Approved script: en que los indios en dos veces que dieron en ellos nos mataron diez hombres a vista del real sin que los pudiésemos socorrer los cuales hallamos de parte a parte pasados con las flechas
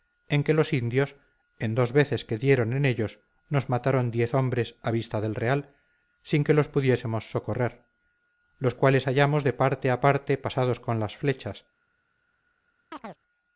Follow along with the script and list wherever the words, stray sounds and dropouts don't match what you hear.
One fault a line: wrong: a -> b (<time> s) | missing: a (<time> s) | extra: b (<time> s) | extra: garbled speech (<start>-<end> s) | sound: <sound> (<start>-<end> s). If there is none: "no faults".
sound: chirp (12.9-13.2 s)